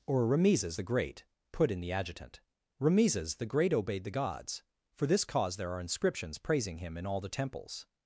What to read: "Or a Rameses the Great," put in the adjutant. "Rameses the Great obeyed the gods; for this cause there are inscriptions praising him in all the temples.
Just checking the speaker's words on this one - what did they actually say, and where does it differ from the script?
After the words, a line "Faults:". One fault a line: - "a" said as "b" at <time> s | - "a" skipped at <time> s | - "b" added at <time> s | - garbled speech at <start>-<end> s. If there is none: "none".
"Or Rameses the Great," put in the adjutant. "Rameses the Great obeyed the gods; for this cause there are inscriptions praising him in all the temples.
Faults:
- "a" skipped at 0.2 s